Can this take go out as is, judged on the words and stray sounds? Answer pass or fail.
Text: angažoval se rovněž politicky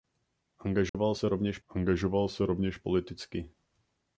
fail